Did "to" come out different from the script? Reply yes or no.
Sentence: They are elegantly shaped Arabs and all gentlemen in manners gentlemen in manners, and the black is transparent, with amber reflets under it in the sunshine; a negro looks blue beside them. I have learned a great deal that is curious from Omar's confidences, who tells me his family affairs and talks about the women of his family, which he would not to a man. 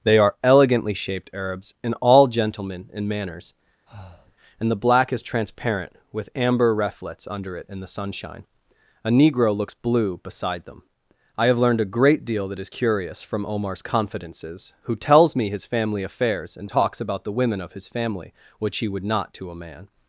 no